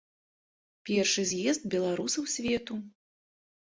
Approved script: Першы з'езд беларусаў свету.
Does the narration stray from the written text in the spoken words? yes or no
no